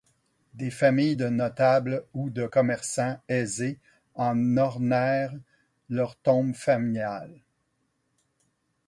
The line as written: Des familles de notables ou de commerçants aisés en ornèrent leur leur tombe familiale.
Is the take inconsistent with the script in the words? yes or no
yes